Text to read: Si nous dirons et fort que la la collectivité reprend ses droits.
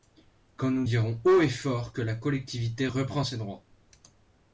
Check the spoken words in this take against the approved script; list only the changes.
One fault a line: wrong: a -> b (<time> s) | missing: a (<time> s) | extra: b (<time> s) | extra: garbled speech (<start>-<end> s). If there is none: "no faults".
wrong: Si -> Quand (0.6 s)
extra: haut (1.2 s)
missing: la (2.1 s)